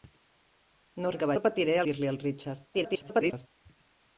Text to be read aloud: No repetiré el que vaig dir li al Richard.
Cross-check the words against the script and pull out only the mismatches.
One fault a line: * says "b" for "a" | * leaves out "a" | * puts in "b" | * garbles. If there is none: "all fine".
* leaves out "repetiré"
* says "repetiré" for "vaig"
* garbles